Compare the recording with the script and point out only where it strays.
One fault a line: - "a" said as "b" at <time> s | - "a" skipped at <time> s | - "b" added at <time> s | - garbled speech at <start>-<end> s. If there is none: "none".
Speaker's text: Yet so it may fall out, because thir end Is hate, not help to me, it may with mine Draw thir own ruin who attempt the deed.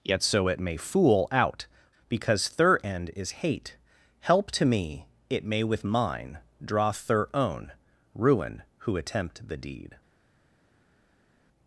- "fall" said as "fool" at 0.8 s
- "not" skipped at 3.8 s